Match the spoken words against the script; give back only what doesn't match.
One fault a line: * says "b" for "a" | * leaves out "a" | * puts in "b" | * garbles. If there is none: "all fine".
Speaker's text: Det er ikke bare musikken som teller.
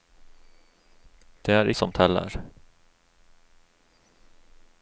* leaves out "ikke bare musikken"